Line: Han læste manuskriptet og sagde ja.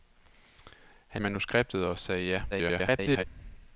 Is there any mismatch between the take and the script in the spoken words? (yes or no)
yes